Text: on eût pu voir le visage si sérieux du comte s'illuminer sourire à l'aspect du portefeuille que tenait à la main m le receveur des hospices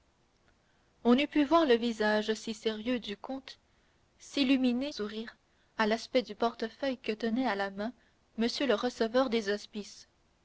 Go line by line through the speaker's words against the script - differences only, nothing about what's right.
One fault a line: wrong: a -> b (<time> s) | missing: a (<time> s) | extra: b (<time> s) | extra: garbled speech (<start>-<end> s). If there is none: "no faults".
no faults